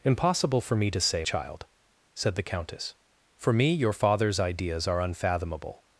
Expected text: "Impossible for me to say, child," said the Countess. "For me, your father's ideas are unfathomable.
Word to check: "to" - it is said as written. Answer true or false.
true